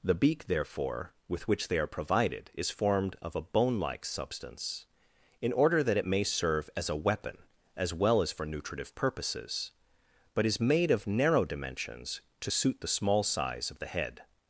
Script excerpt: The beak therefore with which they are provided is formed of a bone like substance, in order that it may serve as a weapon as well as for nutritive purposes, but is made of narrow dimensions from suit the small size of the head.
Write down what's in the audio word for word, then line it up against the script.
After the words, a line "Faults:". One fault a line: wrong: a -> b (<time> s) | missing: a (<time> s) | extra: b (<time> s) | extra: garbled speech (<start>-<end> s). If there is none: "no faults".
The beak therefore with which they are provided is formed of a bone like substance, in order that it may serve as a weapon as well as for nutritive purposes, but is made of narrow dimensions to suit the small size of the head.
Faults:
wrong: from -> to (12.4 s)